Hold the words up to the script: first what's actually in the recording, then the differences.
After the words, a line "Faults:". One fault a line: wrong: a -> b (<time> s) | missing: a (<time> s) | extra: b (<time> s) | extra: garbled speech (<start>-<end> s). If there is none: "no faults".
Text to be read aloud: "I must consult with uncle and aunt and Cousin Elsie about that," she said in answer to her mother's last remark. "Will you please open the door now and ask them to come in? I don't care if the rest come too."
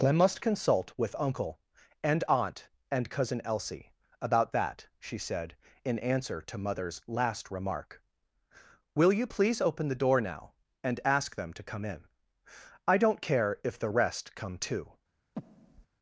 "I must consult with uncle and aunt and Cousin Elsie about that," she said in answer to mother's last remark. "Will you please open the door now and ask them to come in? I don't care if the rest come too."
Faults:
missing: her (6.6 s)